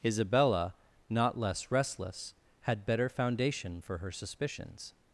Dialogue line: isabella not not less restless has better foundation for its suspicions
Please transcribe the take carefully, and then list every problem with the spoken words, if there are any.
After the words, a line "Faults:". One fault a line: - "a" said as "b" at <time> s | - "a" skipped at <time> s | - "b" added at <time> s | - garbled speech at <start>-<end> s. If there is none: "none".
isabella not less restless had better foundation for her suspicions
Faults:
- "not" skipped at 1.4 s
- "has" said as "had" at 2.6 s
- "its" said as "her" at 4.0 s